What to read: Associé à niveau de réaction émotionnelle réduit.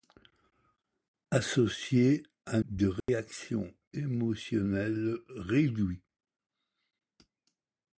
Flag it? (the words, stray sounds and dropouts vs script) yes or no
yes